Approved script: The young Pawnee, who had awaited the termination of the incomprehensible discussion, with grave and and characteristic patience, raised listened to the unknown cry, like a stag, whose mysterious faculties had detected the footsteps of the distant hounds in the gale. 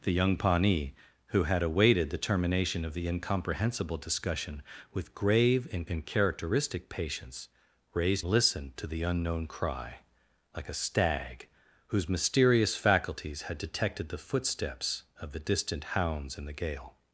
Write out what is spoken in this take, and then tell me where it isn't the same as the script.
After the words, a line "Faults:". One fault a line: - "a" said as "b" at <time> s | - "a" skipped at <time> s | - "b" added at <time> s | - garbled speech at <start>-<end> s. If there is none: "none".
The young Pawnee, who had awaited the termination of the incomprehensible discussion, with grave and and characteristic patience, raised listened to the unknown cry, like a stag, whose mysterious faculties had detected the footsteps of the distant hounds in the gale.
Faults:
none